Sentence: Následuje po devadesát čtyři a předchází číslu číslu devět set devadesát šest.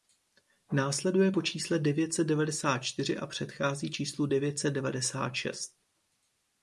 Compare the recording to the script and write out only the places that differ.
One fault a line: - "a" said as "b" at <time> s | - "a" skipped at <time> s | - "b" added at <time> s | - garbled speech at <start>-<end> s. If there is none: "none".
- "čísle devět set" added at 1.4 s
- "číslu" skipped at 4.3 s